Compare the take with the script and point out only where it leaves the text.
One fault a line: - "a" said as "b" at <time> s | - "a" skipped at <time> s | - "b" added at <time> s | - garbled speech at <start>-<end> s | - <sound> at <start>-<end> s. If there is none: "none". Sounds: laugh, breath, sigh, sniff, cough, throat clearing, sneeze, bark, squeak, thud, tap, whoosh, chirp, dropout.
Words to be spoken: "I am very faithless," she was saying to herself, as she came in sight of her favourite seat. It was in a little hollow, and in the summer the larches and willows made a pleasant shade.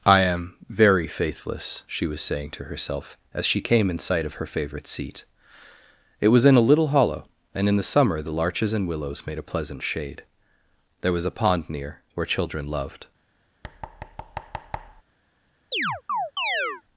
- "There was a pond near where children loved" added at 11.0 s
- thud at 13.6-15.0 s
- chirp at 15.7-16.8 s